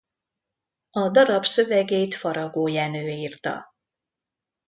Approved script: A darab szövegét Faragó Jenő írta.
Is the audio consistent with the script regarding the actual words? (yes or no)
yes